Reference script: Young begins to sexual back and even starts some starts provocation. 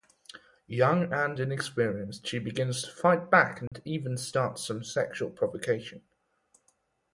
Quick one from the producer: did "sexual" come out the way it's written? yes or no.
no